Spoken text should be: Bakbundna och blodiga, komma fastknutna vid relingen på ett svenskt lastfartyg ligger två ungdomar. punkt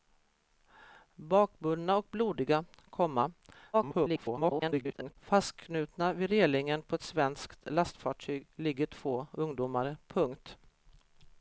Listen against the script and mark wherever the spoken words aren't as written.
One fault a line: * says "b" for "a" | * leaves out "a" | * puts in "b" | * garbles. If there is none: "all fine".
* garbles